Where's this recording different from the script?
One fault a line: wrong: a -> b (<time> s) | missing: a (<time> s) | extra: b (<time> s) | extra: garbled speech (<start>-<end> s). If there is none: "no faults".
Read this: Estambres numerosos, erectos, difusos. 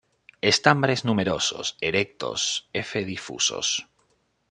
extra: f (2.7 s)